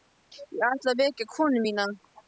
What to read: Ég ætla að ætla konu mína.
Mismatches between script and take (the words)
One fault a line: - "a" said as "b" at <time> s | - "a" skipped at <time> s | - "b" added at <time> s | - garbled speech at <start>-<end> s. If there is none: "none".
- "ætla" said as "vekja" at 1.0 s